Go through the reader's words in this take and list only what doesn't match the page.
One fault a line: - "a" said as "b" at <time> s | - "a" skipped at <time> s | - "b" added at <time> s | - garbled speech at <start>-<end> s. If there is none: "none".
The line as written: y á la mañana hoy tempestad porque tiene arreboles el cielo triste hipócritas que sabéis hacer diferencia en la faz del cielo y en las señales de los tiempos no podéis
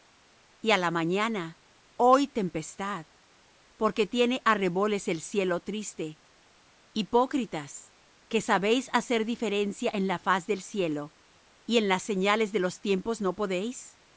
none